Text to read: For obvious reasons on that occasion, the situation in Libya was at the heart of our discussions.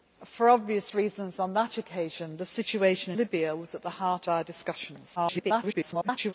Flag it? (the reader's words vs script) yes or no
yes